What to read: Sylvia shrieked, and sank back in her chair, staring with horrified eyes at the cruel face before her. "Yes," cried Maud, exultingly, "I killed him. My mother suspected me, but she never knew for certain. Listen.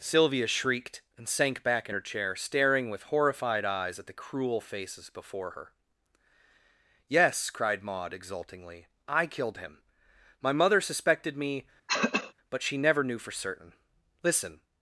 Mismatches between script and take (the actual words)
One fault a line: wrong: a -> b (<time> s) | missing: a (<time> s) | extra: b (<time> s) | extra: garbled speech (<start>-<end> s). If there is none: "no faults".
wrong: face -> faces (4.6 s)